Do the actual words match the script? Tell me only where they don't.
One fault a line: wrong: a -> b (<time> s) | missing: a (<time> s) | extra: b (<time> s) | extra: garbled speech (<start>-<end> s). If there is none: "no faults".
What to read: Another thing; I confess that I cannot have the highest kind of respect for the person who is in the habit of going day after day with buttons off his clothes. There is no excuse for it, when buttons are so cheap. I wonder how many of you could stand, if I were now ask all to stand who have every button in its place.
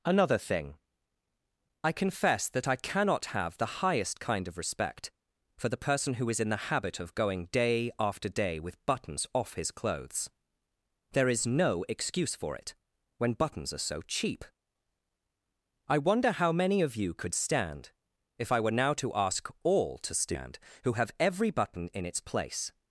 extra: to (18.9 s)